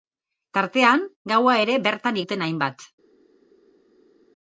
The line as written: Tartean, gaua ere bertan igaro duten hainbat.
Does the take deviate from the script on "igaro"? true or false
true